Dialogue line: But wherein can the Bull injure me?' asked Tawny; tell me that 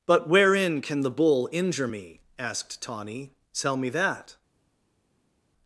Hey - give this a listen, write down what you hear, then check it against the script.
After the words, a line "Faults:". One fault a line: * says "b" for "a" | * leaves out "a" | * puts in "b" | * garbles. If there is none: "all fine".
But wherein can the Bull injure me?' asked Tawny; tell me that
Faults:
all fine